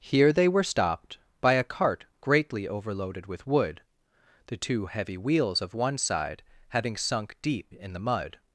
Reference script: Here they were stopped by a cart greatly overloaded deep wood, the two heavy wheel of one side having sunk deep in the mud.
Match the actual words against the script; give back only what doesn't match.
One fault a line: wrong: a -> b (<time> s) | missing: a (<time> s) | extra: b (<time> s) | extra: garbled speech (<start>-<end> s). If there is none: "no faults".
wrong: deep -> with (3.3 s)
wrong: wheel -> wheels (5.2 s)